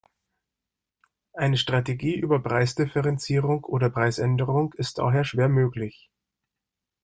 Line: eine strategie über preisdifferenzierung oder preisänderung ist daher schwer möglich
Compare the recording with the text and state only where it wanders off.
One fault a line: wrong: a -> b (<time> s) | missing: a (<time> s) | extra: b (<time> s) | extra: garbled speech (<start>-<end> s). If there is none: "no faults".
no faults